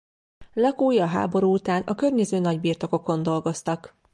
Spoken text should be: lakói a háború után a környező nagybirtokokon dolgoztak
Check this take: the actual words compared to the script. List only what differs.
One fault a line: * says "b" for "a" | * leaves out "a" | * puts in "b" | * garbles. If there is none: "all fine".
all fine